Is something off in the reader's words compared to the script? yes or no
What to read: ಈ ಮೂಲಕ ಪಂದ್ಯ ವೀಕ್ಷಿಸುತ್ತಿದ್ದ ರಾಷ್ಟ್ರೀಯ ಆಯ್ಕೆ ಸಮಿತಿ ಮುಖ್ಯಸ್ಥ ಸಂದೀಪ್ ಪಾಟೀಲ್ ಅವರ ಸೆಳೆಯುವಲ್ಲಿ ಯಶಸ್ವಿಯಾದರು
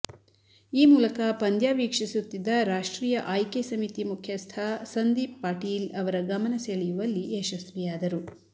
yes